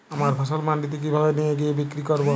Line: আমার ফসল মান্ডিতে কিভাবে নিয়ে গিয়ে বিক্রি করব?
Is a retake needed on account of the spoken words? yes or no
no